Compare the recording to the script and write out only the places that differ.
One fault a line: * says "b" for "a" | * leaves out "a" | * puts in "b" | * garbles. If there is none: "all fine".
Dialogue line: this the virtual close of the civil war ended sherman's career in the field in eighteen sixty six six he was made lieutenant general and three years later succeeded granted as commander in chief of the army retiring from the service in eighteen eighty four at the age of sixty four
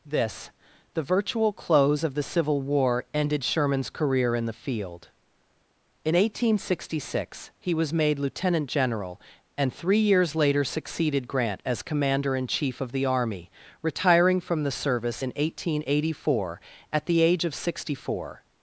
* leaves out "six"
* says "grant" for "granted"